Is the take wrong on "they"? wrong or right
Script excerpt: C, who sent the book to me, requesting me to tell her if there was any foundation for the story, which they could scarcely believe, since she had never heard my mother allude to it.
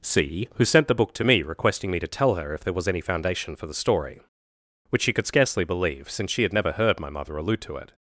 wrong